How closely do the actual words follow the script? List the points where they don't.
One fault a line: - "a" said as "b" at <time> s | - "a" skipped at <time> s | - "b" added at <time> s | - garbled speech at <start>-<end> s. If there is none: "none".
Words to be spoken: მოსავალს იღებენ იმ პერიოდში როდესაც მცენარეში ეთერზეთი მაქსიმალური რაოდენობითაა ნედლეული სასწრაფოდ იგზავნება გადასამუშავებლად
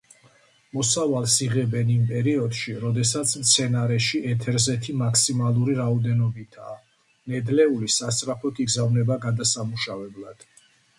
none